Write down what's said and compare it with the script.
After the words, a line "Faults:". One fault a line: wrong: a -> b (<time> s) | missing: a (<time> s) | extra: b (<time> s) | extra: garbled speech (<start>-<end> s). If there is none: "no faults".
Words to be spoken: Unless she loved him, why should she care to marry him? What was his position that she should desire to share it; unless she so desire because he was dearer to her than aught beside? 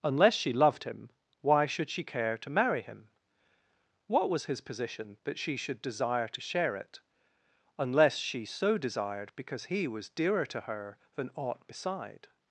Unless she loved him, why should she care to marry him? What was his position that she should desire to share it; unless she so desired because he was dearer to her than aught beside?
Faults:
wrong: desire -> desired (8.8 s)